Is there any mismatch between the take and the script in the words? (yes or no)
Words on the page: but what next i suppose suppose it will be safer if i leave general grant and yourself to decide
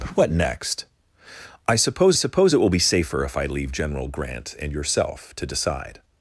no